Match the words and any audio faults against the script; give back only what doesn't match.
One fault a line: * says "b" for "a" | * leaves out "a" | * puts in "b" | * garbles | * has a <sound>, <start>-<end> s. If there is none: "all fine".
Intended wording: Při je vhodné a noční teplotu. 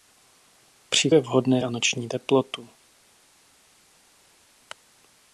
all fine